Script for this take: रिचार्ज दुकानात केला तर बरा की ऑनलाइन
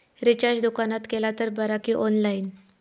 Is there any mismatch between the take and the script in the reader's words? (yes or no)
no